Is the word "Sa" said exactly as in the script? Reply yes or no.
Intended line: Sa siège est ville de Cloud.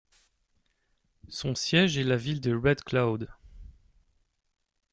no